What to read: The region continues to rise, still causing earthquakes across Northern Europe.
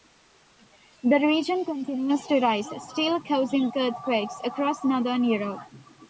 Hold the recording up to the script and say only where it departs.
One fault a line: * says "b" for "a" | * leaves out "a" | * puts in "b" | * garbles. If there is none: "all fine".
all fine